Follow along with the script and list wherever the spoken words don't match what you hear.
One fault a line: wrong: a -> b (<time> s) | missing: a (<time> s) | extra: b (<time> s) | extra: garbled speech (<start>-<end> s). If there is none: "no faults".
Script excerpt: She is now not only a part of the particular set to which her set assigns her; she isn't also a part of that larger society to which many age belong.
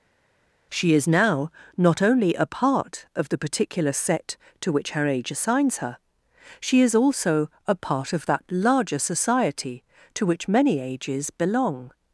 wrong: set -> age (5.1 s)
wrong: isn't -> is (6.8 s)
wrong: age -> ages (10.8 s)